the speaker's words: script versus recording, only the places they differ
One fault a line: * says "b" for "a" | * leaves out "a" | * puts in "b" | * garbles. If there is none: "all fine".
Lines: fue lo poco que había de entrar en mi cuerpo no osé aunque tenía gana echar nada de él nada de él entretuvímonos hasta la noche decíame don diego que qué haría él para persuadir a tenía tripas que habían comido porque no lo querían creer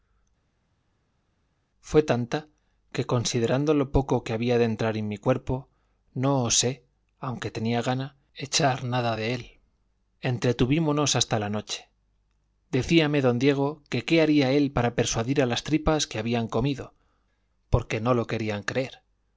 * puts in "tanta que considerando"
* leaves out "nada de él"
* says "las" for "tenía"